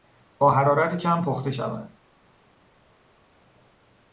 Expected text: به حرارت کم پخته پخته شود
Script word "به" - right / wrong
wrong